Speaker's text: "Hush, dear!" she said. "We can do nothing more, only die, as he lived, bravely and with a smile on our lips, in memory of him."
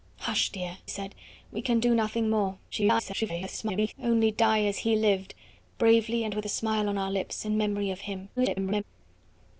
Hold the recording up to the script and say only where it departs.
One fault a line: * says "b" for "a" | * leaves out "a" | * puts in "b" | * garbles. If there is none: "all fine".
* leaves out "she"
* garbles
* garbles